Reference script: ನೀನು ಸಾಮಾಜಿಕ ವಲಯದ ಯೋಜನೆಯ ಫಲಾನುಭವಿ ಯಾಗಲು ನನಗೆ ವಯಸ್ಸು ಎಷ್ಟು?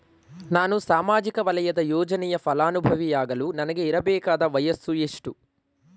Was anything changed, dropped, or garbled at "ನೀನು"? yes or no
yes